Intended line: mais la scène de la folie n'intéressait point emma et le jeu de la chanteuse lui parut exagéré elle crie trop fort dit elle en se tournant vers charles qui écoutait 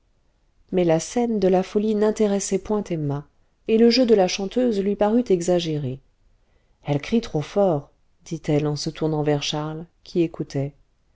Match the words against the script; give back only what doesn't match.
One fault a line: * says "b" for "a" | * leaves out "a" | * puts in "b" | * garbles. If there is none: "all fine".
all fine